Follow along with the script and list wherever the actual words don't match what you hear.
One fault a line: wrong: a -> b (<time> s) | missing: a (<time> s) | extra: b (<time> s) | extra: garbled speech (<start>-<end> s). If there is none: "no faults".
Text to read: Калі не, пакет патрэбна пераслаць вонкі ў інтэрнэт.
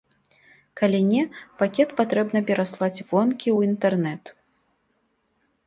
no faults